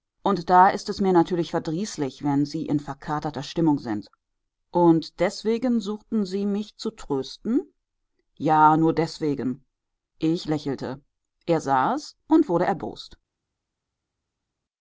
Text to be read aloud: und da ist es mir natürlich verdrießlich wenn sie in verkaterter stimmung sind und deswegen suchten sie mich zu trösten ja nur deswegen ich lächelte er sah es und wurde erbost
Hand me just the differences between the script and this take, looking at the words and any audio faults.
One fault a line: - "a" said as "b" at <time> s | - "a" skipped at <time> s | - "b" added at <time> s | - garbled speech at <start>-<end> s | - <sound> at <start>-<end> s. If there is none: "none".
none